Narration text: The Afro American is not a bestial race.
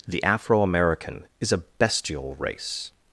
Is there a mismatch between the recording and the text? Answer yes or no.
yes